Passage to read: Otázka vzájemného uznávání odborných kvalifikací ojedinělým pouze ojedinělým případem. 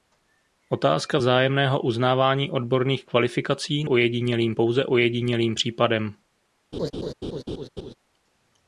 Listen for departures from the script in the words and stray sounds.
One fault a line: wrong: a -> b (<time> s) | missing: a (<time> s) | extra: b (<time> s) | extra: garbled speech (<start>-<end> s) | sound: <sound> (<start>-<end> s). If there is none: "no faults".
sound: laugh (6.7-7.9 s)